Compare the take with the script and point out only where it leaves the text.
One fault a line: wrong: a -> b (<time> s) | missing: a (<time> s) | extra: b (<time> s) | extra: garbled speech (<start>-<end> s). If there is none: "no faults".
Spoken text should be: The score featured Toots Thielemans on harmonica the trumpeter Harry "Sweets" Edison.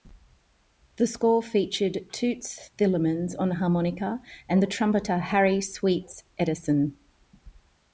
extra: and (4.5 s)